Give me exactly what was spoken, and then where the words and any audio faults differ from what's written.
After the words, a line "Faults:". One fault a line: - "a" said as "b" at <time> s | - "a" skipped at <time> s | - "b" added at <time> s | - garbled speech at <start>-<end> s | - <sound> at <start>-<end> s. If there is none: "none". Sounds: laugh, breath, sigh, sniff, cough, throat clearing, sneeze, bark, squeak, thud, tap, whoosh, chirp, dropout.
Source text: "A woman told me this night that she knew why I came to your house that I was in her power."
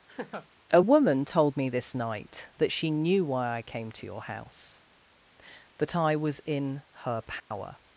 "A woman told me this night that she knew why I came to your house that I was in her power."
Faults:
- laugh at 0.1-0.5 s
- dropout at 7.4-7.5 s